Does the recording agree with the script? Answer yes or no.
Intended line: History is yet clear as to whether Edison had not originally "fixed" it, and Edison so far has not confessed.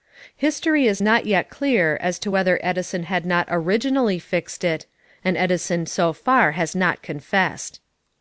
no